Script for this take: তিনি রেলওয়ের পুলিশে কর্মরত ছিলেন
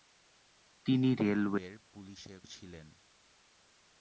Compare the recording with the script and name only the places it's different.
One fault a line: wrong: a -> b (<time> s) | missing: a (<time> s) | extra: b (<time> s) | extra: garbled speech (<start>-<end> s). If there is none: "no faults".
missing: কর্মরত (2.3 s)